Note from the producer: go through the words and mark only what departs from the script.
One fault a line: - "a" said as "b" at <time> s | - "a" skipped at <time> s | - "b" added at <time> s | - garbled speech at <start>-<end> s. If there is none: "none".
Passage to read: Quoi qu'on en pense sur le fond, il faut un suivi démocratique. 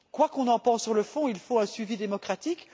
none